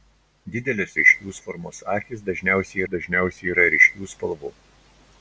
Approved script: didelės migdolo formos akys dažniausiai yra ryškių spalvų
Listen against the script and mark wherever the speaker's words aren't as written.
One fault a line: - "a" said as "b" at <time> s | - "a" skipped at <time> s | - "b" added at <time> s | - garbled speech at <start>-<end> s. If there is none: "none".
- "migdolo" said as "ryškių" at 1.0 s
- "dažniausiai" added at 2.9 s